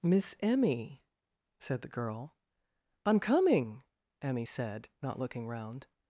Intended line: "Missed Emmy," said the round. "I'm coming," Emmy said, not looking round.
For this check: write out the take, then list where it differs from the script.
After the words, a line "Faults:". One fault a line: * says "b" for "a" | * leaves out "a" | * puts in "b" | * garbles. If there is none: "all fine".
"Miss Emmy," said the girl. "I'm coming," Emmy said, not looking round.
Faults:
* says "Miss" for "Missed"
* says "girl" for "round"